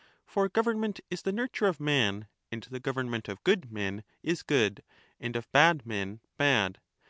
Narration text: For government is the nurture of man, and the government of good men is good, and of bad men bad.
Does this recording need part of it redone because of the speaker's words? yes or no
no